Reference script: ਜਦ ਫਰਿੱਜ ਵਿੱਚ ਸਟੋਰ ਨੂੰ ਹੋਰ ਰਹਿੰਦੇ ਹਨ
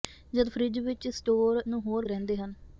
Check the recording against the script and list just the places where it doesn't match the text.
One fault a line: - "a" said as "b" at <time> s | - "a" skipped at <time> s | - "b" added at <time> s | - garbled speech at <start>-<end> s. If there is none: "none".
none